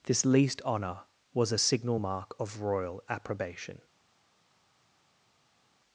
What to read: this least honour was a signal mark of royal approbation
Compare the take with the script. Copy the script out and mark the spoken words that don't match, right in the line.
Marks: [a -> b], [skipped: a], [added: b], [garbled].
this least honour was a signal mark of royal approbation